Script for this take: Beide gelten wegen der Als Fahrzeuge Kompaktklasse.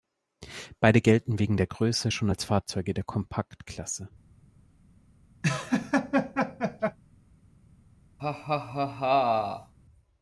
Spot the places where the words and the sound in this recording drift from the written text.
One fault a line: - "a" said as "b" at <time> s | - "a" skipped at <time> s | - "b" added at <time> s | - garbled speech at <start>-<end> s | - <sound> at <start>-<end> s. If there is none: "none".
- "Größe schon" added at 1.7 s
- "der" added at 2.9 s
- laugh at 5.4-7.0 s
- laugh at 8.2-9.7 s